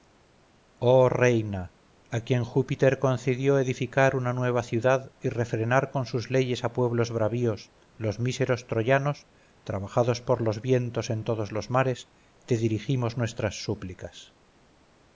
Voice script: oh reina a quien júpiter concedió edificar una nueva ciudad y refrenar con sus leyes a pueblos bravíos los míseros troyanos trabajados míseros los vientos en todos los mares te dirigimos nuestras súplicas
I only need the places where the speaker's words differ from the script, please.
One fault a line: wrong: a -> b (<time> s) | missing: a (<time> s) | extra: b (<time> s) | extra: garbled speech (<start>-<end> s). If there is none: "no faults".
wrong: míseros -> por (10.2 s)